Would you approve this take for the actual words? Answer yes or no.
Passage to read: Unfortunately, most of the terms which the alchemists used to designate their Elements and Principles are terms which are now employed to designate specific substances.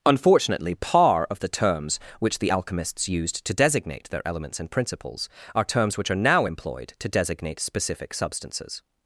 no